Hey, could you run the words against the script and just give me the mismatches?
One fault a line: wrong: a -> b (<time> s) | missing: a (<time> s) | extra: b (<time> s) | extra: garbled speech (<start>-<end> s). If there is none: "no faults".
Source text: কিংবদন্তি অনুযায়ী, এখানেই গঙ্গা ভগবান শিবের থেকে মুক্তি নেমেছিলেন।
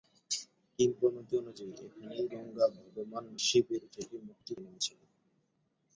no faults